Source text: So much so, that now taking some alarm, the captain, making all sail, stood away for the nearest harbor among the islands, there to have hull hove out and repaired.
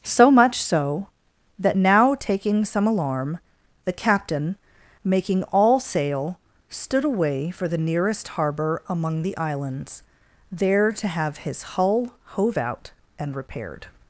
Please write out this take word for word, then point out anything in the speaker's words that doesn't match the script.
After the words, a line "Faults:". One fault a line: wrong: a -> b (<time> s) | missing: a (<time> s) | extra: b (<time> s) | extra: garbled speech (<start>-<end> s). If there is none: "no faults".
So much so, that now taking some alarm, the captain, making all sail, stood away for the nearest harbor among the islands, there to have his hull hove out and repaired.
Faults:
extra: his (11.4 s)